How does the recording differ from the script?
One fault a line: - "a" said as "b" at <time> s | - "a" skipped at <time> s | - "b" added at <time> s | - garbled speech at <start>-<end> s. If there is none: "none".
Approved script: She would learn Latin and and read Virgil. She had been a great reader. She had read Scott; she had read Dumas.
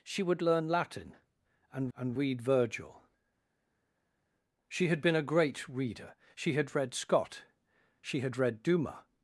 none